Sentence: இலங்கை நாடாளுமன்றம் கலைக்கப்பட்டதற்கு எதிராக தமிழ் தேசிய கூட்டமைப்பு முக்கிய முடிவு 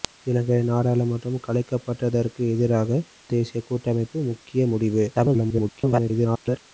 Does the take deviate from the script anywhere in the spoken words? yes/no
yes